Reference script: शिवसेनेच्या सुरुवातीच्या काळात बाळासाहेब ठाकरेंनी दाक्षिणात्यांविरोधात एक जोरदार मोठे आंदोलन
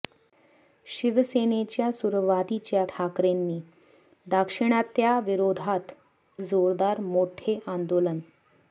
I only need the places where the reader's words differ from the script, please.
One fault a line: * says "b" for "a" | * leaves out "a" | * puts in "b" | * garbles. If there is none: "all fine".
* leaves out "काळात बाळासाहेब"
* leaves out "एक"